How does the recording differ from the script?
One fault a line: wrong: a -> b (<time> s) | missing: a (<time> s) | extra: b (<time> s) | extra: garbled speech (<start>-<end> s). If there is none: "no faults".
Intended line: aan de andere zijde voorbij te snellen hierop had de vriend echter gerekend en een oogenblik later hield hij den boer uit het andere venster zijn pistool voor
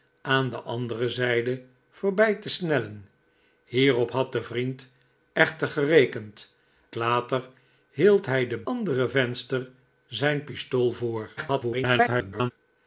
missing: en een oogenblik (6.5 s)
missing: boer uit het (8.6 s)
extra: garbled speech (11.4-12.5 s)